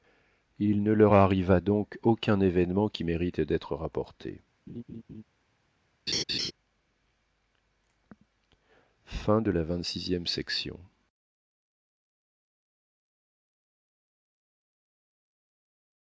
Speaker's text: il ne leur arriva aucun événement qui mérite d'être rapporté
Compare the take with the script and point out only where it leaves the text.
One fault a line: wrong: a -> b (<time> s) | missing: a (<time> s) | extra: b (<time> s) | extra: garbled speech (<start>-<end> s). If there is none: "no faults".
extra: donc (1.6 s)